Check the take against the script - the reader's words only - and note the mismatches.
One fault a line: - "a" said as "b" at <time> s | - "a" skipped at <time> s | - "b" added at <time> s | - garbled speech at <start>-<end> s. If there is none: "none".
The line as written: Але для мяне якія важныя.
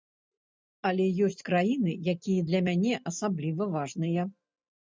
- "ёсць краіны якія" added at 1.3 s
- "якія" said as "асабліва" at 3.1 s